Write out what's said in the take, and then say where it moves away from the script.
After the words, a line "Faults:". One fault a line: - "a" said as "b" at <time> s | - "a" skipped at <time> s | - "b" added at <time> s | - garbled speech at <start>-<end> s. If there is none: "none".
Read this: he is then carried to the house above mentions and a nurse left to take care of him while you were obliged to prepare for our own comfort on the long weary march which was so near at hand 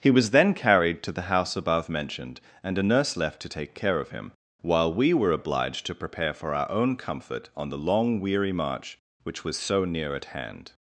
he was then carried to the house above mentioned and a nurse left to take care of him while we were obliged to prepare for our own comfort on the long weary march which was so near at hand
Faults:
- "is" said as "was" at 0.1 s
- "mentions" said as "mentioned" at 1.9 s
- "you" said as "we" at 4.9 s